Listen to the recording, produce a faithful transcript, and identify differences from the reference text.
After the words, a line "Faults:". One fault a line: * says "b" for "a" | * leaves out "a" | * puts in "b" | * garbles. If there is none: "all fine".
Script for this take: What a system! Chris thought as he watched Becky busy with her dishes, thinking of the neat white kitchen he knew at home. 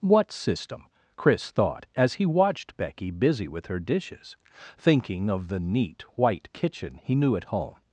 What system! Chris thought as he watched Becky busy with her dishes, thinking of the neat white kitchen he knew at home.
Faults:
* leaves out "a"